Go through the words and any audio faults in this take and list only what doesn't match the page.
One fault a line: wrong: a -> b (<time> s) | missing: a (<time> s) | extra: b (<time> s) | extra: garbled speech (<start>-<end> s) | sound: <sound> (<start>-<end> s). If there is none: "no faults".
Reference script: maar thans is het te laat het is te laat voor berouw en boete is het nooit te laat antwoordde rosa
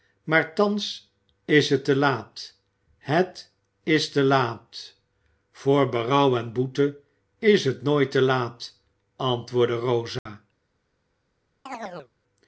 sound: dropout (10.2-10.3 s)
sound: chirp (11.7-12.1 s)